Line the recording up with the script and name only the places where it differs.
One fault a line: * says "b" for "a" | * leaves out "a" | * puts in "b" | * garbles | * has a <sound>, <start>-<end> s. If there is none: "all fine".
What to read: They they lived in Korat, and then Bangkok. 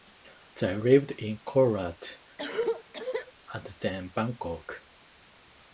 * leaves out "they"
* has a cough, 2.4-3.3 s